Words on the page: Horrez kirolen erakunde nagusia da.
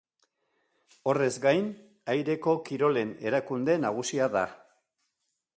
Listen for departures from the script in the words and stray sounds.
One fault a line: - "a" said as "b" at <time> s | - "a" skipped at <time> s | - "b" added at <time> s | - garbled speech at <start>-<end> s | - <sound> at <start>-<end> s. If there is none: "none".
- "gain aireko" added at 1.4 s